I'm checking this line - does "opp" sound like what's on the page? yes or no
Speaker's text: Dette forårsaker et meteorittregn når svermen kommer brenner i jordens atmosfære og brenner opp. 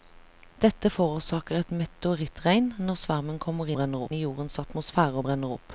yes